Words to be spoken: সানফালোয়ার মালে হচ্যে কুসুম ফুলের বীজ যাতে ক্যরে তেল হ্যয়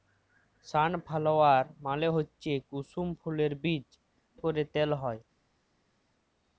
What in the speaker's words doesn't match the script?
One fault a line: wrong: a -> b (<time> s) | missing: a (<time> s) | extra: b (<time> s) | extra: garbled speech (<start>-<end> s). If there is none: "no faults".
missing: যাতে (3.9 s)